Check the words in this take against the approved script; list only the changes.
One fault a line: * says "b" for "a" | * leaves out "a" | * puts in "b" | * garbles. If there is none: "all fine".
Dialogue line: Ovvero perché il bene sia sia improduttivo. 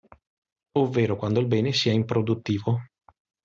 * says "quando" for "perché"
* leaves out "sia"